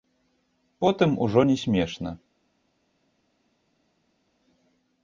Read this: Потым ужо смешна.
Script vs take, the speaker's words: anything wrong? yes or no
yes